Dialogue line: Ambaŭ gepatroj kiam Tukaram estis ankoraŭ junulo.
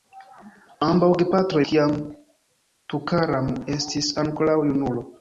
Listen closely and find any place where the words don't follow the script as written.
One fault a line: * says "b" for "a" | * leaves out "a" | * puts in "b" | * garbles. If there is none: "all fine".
all fine